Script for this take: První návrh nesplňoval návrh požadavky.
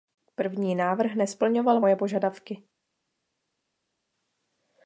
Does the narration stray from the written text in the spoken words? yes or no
yes